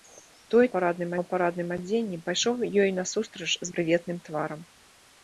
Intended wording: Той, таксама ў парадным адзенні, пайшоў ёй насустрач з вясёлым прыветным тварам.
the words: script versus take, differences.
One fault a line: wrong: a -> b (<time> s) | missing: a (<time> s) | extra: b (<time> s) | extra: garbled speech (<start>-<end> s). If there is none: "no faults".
wrong: таксама -> парадным (0.7 s)
missing: вясёлым (3.7 s)